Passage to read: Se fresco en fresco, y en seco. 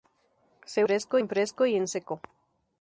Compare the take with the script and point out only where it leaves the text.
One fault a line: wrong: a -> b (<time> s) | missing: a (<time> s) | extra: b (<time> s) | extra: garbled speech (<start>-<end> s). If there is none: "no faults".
no faults